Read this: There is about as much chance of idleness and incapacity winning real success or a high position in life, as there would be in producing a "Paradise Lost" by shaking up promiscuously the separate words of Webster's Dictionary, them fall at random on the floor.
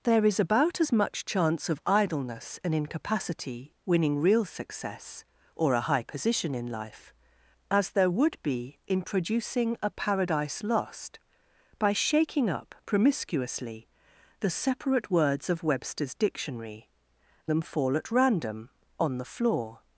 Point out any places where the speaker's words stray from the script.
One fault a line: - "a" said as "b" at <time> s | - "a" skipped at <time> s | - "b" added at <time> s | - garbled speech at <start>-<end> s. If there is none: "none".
none